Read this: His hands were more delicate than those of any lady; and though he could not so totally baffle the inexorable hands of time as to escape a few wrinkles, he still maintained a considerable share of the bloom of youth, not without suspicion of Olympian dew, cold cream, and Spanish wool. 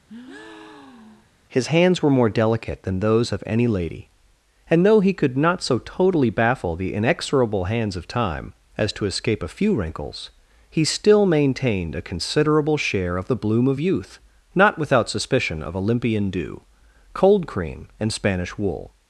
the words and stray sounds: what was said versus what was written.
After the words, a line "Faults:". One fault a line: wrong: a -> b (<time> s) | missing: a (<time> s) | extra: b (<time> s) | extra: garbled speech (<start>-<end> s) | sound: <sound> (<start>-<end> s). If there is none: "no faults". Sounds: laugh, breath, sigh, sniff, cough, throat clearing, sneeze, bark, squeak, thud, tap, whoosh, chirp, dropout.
His hands were more delicate than those of any lady; and though he could not so totally baffle the inexorable hands of time as to escape a few wrinkles, he still maintained a considerable share of the bloom of youth, not without suspicion of Olympian dew, cold cream, and Spanish wool.
Faults:
sound: breath (0.1-1.3 s)